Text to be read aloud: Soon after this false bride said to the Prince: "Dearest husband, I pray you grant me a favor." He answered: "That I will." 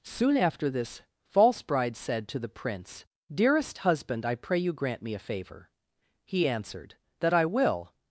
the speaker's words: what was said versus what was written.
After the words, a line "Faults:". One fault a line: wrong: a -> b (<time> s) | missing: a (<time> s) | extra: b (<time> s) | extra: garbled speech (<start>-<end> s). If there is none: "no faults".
Soon after this false bride said to the Prince: "Dearest husband, I pray you grant me a favor." He answered: "That I will."
Faults:
no faults